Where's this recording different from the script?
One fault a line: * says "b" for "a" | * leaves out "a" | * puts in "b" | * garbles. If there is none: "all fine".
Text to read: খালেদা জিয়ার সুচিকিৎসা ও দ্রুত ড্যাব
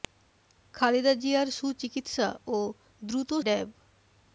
all fine